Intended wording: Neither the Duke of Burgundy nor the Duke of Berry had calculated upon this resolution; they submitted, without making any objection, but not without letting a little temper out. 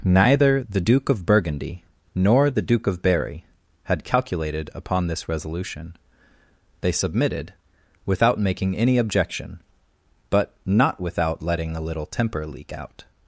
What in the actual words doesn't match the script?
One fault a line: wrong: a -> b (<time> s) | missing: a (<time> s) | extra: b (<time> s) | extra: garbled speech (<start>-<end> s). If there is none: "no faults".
extra: leak (12.5 s)